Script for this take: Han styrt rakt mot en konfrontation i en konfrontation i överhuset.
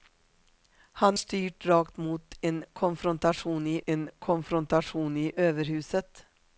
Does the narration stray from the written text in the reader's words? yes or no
no